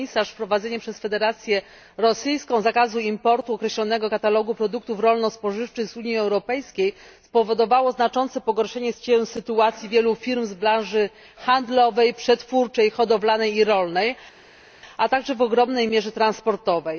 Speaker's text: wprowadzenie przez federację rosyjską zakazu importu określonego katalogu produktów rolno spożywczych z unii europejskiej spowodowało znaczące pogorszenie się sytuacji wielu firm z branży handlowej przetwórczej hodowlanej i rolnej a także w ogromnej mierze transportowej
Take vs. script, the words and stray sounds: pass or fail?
pass